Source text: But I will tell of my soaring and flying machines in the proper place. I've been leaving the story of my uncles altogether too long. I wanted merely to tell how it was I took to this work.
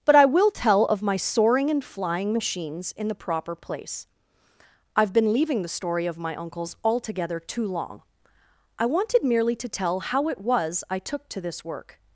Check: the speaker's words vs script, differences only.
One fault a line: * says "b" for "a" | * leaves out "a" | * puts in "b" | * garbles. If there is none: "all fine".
all fine